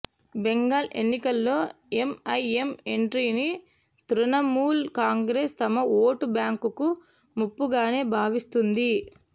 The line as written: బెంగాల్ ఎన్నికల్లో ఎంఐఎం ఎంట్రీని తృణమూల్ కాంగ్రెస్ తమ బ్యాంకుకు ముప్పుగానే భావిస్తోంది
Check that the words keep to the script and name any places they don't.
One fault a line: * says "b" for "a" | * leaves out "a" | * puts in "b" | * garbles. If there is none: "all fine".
* puts in "ఓటు"